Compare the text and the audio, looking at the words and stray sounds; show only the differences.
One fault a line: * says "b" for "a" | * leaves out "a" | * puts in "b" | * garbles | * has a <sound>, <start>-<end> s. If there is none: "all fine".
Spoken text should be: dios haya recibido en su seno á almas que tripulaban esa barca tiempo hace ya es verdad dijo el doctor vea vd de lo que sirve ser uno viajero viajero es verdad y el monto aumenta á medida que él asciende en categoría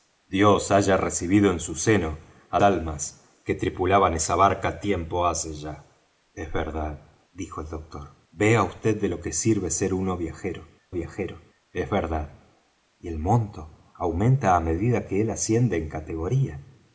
all fine